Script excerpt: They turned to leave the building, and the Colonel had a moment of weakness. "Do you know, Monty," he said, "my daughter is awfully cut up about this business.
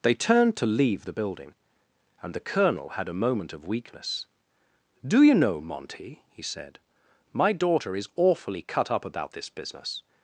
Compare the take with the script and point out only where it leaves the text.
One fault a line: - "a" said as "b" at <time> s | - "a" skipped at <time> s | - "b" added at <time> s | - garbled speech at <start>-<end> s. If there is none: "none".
none